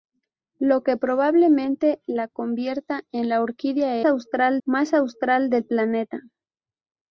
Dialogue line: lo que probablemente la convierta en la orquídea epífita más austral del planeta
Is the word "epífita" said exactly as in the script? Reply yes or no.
no